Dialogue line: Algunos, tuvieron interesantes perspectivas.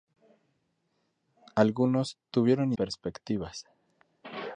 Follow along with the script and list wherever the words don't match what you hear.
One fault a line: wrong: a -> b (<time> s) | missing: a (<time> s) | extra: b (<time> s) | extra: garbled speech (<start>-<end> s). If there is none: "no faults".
missing: interesantes (2.7 s)